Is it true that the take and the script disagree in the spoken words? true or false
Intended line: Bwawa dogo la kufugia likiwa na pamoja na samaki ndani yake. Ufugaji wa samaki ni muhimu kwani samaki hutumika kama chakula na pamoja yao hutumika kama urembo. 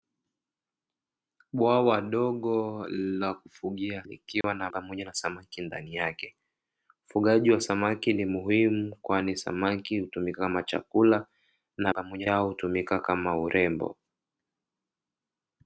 false